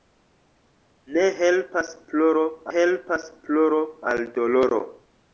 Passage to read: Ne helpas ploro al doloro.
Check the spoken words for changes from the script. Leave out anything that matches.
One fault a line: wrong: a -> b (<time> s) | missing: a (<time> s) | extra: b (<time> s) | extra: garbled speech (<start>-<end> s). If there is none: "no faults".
extra: helpas ploro (2.8 s)